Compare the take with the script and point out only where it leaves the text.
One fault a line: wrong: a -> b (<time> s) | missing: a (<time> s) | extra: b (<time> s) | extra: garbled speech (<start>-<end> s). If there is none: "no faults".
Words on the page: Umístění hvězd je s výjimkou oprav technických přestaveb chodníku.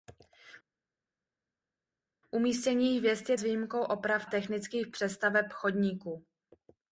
no faults